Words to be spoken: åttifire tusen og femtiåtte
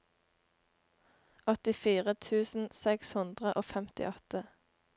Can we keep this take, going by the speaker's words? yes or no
no